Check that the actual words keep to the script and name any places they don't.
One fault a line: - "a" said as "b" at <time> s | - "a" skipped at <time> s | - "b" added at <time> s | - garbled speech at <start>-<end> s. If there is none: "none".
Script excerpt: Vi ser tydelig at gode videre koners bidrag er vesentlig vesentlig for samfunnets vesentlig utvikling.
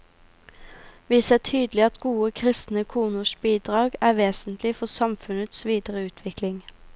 - "videre" said as "kristne" at 2.3 s
- "vesentlig" skipped at 4.7 s
- "vesentlig" said as "videre" at 5.6 s